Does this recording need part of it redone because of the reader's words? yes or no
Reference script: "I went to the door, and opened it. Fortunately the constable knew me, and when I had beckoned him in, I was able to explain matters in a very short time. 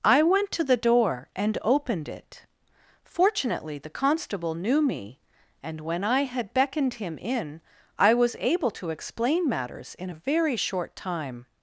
no